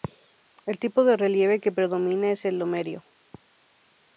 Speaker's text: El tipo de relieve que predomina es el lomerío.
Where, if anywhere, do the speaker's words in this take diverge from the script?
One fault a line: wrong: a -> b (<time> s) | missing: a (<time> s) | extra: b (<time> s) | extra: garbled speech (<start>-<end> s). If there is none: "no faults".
no faults